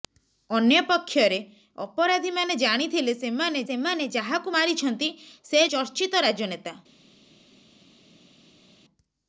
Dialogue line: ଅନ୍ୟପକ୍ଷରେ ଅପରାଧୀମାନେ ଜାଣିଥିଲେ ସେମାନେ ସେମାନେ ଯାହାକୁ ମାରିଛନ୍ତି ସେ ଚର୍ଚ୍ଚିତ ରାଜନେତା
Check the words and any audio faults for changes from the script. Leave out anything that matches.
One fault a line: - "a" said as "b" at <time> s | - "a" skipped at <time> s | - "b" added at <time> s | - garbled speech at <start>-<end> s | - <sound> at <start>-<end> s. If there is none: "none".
none